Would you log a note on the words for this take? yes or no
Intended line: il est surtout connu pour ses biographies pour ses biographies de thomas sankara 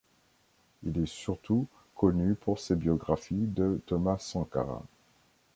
yes